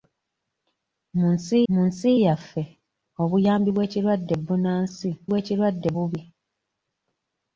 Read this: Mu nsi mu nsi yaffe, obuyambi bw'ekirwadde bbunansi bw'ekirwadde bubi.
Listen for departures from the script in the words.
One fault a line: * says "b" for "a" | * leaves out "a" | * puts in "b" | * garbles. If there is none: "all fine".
all fine